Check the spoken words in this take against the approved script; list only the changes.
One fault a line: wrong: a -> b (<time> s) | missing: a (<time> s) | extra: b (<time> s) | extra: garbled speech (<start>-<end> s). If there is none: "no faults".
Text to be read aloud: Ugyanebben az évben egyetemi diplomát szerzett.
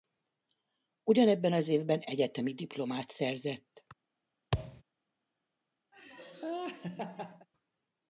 no faults